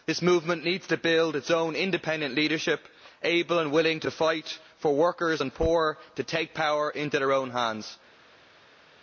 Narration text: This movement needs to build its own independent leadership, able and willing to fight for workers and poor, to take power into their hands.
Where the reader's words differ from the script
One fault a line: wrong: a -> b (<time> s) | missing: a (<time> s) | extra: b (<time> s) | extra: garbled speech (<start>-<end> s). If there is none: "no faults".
extra: own (7.3 s)